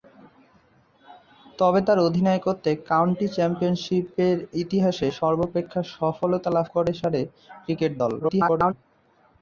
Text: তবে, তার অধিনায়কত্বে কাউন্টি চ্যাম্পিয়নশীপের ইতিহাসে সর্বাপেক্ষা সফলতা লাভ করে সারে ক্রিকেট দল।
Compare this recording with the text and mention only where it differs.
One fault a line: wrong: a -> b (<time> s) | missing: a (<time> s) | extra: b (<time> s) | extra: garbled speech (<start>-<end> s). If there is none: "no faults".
extra: garbled speech (8.2-8.7 s)